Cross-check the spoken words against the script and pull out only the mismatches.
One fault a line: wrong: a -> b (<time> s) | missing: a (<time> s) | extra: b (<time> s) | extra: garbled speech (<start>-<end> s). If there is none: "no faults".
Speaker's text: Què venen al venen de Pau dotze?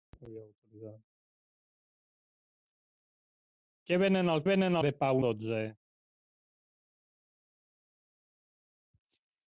no faults